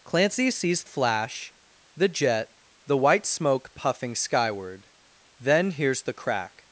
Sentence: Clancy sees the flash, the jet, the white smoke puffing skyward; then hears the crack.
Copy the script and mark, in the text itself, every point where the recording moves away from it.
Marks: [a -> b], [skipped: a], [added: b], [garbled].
Clancy sees [skipped: the] flash, the jet, the white smoke puffing skyward; then hears the crack.